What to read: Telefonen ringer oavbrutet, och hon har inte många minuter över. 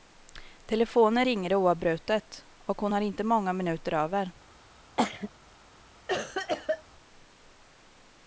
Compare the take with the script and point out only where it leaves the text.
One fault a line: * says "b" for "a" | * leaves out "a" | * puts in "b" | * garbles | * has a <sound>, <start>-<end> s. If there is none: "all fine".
* has a cough, 5.0-5.3 s
* has a cough, 6.1-6.8 s